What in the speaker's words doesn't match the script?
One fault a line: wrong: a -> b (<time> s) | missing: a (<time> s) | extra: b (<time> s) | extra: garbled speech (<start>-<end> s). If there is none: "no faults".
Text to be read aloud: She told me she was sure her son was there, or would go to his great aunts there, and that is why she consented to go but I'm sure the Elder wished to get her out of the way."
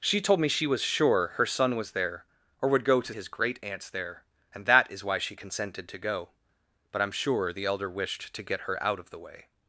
no faults